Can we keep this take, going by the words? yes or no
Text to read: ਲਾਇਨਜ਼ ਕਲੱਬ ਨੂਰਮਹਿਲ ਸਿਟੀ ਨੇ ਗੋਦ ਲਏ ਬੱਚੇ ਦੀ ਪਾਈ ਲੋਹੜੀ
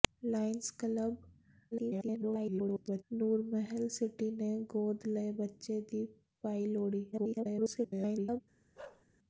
no